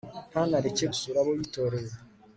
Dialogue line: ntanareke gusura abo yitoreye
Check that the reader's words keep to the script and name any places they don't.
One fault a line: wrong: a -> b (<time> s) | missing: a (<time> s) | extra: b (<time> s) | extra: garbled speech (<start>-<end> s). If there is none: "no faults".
no faults